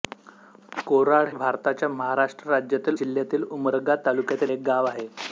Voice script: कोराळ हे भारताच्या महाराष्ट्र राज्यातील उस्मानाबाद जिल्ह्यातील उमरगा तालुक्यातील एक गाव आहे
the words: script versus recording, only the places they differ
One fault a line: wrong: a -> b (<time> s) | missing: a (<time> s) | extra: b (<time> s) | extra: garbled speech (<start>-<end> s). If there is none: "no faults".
missing: हे (1.3 s)
missing: उस्मानाबाद (3.0 s)